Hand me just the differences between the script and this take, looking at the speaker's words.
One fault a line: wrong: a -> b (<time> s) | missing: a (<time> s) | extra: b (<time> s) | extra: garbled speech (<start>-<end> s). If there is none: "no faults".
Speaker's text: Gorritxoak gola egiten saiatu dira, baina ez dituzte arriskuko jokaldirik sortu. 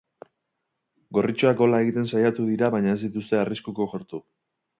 missing: jokaldirik (3.9 s)